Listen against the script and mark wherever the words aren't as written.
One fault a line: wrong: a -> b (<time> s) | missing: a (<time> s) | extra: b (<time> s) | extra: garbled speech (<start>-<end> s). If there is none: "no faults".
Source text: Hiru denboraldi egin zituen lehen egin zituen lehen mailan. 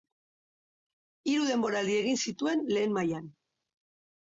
missing: egin zituen lehen (3.0 s)